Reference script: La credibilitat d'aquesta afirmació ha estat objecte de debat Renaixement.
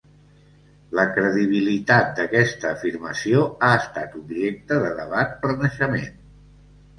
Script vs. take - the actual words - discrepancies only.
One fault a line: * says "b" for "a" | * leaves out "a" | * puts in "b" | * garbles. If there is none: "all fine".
all fine